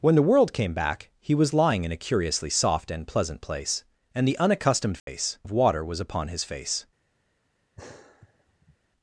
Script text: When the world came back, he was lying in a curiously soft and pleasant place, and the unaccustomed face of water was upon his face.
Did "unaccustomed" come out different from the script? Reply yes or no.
no